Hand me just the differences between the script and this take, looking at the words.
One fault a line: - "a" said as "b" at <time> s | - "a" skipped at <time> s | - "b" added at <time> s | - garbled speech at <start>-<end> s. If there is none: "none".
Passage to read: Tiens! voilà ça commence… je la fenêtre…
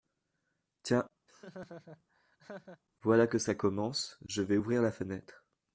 - "que" added at 3.3 s
- "vais ouvrir" added at 4.4 s